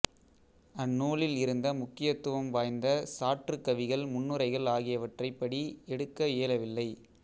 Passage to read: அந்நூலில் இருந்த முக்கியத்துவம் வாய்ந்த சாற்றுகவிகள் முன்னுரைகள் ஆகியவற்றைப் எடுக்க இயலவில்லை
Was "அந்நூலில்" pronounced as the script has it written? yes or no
yes